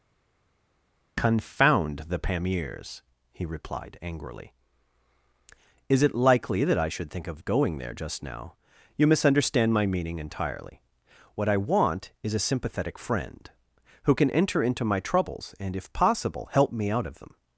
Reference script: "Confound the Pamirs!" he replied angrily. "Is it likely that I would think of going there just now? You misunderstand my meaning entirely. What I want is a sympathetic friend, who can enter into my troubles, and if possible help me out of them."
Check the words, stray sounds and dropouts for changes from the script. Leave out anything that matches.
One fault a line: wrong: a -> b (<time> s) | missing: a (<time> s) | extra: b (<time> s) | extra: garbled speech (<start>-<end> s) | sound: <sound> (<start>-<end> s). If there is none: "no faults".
wrong: would -> should (6.9 s)